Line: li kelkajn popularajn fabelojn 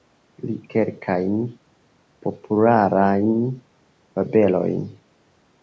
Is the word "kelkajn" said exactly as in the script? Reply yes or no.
yes